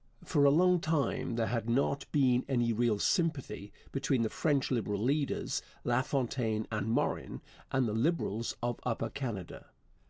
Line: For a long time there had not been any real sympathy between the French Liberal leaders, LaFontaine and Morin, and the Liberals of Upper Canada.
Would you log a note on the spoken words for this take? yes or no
no